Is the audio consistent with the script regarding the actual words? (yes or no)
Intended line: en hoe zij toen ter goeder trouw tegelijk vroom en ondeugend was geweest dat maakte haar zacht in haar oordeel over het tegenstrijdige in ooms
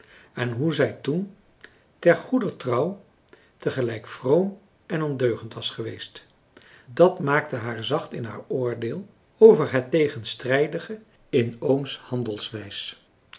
yes